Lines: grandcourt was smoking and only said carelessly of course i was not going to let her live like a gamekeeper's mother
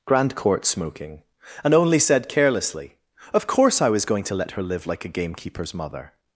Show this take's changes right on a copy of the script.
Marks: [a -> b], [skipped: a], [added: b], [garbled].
grandcourt [skipped: was] smoking and only said carelessly of course i was [skipped: not] going to let her live like a gamekeeper's mother